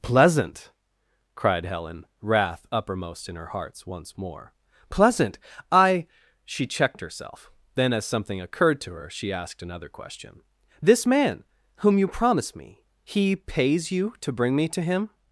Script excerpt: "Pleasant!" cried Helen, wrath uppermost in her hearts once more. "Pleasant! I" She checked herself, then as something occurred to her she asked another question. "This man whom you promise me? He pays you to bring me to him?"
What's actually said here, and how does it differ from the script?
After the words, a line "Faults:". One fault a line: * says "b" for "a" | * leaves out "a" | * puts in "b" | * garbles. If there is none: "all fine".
"Pleasant!" cried Helen, wrath uppermost in her hearts once more. "Pleasant! I" She checked herself, then as something occurred to her she asked another question. "This man whom you promise me? He pays you to bring me to him?"
Faults:
all fine